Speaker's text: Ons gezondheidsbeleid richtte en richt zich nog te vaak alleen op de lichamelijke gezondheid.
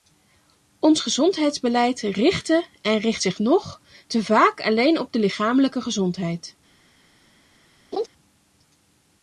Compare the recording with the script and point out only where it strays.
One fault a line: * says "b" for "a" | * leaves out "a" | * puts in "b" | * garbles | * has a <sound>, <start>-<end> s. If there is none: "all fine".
* has a laugh, 7.9-8.1 s